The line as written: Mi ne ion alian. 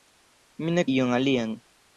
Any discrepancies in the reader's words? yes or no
no